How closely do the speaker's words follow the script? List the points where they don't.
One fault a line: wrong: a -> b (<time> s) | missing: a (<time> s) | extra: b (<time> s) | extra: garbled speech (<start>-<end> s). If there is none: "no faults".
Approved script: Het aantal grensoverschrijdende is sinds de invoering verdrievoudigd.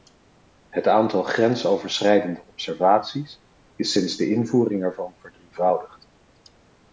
extra: observaties (2.5 s)
extra: ervan (4.8 s)